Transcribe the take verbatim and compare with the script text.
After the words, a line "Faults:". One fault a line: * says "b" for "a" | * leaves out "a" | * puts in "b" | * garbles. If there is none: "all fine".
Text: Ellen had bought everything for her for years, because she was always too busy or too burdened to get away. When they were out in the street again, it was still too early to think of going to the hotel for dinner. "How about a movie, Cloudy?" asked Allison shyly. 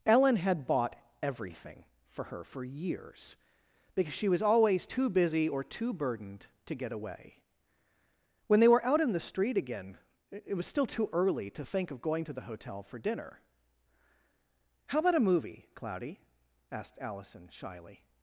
Ellen had bought everything for her for years, because she was always too busy or too burdened to get away. When they were out in the street again, it was still too early to think of going to the hotel for dinner. "How about a movie, Cloudy?" asked Allison shyly.
Faults:
all fine